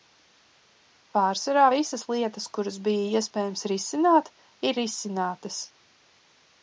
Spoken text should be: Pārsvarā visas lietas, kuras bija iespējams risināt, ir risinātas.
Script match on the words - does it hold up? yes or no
yes